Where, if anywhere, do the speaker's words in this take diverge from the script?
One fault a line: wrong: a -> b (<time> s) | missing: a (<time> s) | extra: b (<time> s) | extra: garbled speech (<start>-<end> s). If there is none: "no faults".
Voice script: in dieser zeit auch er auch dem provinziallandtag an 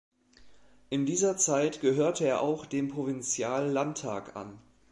wrong: auch -> gehörte (1.8 s)